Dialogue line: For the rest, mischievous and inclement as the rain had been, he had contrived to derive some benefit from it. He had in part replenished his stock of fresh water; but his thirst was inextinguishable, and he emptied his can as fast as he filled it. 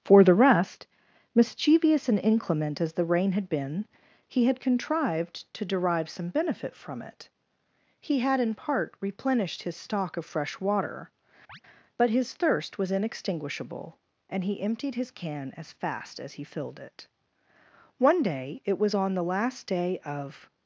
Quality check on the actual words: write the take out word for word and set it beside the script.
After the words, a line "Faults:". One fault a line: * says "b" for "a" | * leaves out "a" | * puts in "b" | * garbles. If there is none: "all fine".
For the rest, mischievous and inclement as the rain had been, he had contrived to derive some benefit from it. He had in part replenished his stock of fresh water; but his thirst was inextinguishable, and he emptied his can as fast as he filled it. One day it was on the last day of
Faults:
* puts in "One day it was on the last day of"